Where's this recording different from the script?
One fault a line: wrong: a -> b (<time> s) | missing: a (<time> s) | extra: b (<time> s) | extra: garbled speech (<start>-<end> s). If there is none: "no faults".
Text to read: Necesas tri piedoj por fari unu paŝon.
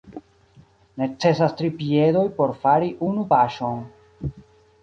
no faults